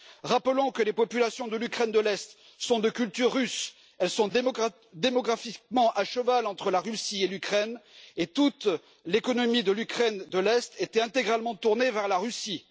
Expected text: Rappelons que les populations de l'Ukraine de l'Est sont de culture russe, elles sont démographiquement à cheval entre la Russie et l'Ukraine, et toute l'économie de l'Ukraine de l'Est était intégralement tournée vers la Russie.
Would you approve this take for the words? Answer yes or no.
yes